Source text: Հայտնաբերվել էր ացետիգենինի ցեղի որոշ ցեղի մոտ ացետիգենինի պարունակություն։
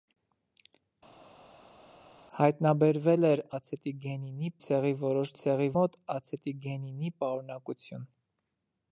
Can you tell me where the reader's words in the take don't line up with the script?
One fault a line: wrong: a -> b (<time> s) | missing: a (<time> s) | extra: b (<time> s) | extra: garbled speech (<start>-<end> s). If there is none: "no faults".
no faults